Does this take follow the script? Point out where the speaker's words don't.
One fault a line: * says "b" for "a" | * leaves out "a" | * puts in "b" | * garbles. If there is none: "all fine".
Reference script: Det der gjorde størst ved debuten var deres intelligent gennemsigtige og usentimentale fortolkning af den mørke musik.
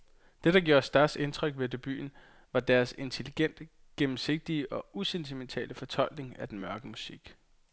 * puts in "indtryk"